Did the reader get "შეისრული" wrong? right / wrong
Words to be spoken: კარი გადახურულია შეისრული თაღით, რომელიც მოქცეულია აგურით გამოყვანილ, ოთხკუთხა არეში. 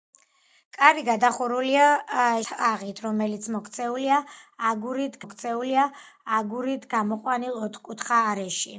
wrong